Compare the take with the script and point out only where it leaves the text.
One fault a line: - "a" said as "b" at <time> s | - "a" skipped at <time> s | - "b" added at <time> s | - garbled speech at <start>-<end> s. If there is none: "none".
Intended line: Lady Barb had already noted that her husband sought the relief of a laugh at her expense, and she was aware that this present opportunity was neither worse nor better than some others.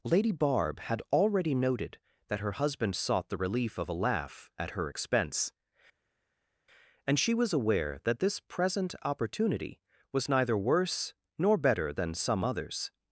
none